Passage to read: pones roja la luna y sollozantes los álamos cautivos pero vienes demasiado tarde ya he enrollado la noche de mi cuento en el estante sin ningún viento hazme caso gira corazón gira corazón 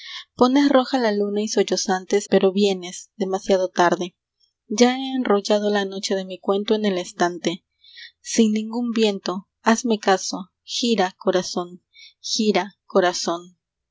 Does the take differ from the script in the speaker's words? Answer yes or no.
yes